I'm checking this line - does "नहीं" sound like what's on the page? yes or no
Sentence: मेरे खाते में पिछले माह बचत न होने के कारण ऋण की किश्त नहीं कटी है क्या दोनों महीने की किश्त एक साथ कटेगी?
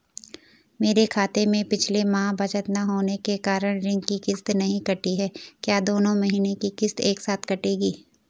yes